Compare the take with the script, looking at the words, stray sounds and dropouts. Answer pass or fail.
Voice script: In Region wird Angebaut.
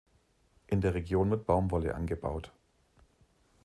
fail